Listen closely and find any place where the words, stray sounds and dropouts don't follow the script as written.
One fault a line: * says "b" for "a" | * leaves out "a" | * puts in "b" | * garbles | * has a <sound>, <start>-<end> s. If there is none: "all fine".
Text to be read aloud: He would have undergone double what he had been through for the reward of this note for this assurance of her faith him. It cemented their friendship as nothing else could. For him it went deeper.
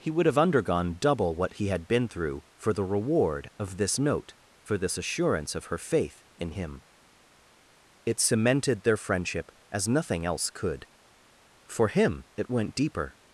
* puts in "in"